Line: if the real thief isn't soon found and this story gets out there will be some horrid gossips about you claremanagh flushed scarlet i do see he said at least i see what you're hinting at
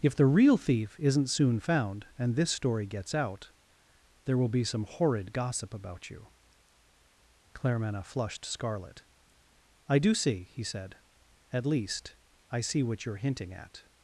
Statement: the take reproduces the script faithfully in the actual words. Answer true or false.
false